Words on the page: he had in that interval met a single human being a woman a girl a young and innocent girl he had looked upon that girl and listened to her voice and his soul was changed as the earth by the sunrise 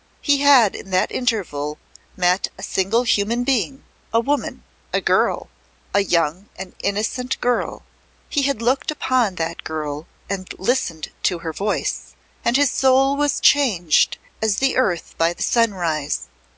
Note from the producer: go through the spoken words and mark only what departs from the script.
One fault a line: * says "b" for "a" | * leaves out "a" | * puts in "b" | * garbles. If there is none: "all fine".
all fine